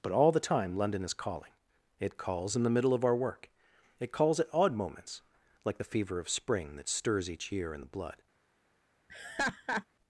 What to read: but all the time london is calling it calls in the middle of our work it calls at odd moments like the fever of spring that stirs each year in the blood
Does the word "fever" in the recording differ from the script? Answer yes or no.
no